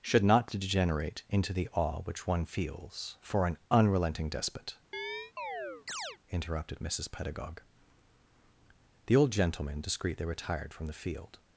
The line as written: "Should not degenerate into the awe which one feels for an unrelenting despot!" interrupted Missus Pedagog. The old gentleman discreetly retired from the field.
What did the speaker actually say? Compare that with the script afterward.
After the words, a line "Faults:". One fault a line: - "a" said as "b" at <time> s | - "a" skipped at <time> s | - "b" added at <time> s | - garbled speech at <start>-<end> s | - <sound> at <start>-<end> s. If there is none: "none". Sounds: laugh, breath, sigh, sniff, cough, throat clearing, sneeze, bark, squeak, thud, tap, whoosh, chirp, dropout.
"Should not degenerate into the awe which one feels for an unrelenting despot!" interrupted Missus Pedagog. The old gentleman discreetly retired from the field.
Faults:
- chirp at 4.9-6.2 s